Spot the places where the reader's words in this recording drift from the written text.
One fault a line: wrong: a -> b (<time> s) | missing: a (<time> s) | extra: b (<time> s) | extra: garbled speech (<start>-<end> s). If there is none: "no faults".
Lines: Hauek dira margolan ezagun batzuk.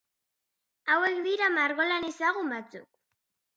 no faults